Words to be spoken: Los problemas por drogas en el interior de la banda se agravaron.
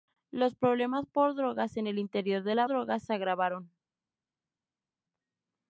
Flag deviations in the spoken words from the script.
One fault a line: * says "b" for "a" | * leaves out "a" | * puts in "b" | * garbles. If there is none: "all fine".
* says "drogas" for "banda"